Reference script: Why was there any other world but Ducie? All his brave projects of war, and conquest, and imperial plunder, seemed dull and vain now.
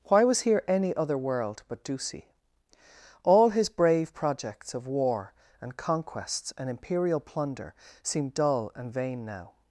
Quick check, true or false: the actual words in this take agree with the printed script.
false